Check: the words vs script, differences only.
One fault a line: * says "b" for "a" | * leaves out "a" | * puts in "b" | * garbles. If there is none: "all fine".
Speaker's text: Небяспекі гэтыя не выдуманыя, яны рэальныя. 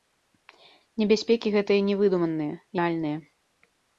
* leaves out "яны"